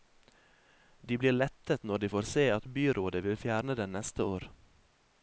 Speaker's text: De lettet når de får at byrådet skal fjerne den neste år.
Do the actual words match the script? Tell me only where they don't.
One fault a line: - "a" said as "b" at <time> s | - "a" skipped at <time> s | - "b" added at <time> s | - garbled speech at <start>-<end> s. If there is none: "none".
- "blir" added at 1.2 s
- "se" added at 2.3 s
- "skal" said as "vil" at 3.3 s